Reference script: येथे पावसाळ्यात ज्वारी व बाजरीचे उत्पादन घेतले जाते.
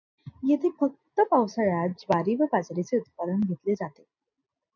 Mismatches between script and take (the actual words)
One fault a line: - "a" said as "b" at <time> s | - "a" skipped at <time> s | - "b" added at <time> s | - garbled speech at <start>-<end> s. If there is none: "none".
- "फक्त" added at 0.8 s